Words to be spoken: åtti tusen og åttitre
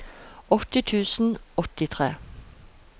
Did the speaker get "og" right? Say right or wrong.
wrong